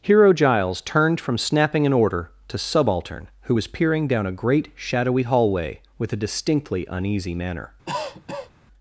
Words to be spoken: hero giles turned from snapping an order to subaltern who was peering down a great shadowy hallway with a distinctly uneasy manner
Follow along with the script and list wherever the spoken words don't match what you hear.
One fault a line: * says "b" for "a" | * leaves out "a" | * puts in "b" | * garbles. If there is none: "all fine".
all fine